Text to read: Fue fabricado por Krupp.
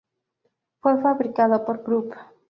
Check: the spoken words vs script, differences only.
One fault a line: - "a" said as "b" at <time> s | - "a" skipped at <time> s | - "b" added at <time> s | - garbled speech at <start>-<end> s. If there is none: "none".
none